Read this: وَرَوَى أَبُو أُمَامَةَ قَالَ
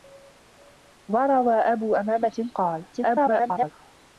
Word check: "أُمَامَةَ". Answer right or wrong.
right